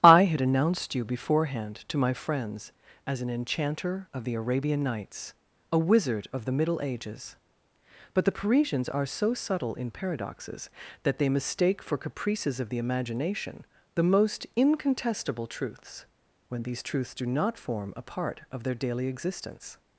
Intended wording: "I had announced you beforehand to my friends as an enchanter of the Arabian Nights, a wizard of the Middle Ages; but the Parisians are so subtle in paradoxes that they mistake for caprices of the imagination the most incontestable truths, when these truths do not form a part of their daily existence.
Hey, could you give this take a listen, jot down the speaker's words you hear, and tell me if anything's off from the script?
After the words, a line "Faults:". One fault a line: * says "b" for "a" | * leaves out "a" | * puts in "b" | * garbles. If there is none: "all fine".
"I had announced you beforehand to my friends as an enchanter of the Arabian Nights, a wizard of the Middle Ages; but the Parisians are so subtle in paradoxes that they mistake for caprices of the imagination the most incontestable truths, when these truths do not form a part of their daily existence.
Faults:
all fine